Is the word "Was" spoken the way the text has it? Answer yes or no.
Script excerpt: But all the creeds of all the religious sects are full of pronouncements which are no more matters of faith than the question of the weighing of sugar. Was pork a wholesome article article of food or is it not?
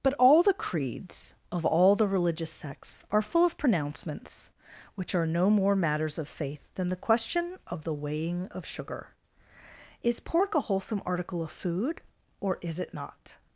no